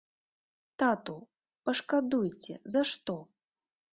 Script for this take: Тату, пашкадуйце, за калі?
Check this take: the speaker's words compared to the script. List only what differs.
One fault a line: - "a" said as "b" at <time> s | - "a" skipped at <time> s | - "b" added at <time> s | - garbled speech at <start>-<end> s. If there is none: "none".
- "калі" said as "што" at 2.9 s